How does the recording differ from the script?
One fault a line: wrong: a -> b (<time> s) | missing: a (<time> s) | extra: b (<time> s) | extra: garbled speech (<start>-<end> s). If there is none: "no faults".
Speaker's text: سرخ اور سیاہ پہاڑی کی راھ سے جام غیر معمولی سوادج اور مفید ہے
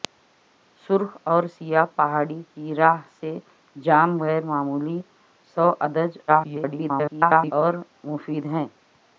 extra: garbled speech (6.3-7.5 s)